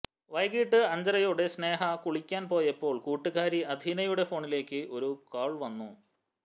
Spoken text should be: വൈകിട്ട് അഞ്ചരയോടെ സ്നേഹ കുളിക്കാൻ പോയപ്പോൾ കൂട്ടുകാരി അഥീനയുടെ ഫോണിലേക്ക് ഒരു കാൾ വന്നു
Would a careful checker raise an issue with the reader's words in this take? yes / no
no